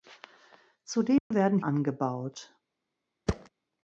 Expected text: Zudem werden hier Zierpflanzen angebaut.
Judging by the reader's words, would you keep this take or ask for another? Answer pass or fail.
fail